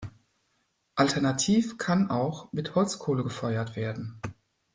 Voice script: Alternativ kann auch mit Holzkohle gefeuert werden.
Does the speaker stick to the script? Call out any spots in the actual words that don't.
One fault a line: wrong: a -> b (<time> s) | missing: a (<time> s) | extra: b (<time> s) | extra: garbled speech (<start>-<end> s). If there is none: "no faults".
no faults